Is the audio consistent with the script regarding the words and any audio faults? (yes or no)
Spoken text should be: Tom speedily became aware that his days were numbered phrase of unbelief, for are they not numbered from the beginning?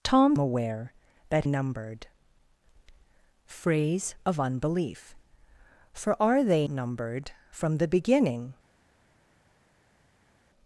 no